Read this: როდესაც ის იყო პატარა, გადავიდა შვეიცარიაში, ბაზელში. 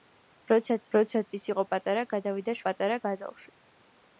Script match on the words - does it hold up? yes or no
no